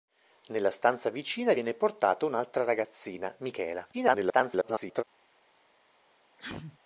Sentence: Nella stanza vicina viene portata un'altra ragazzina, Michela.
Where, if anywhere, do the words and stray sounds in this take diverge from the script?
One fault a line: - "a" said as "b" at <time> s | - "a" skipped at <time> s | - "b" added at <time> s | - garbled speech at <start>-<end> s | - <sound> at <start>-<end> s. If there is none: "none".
- garbled speech at 3.9-5.0 s
- sneeze at 6.4-6.8 s